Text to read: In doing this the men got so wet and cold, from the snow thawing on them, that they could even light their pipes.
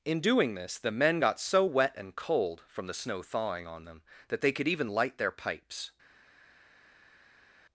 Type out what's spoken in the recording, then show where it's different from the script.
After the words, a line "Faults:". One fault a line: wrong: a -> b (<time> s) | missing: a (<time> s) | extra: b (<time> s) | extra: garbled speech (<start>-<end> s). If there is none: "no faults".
In doing this the men got so wet and cold, from the snow thawing on them, that they could even light their pipes.
Faults:
no faults